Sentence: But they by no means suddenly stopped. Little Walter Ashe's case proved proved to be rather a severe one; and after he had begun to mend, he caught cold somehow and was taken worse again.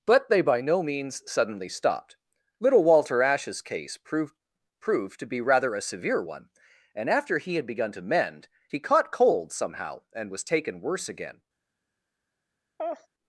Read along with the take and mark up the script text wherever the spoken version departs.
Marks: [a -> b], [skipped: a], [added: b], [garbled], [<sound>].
But they by no means suddenly stopped. Little Walter Ashe's case proved proved to be rather a severe one; and after he had begun to mend, he caught cold somehow and was taken worse again. [laugh]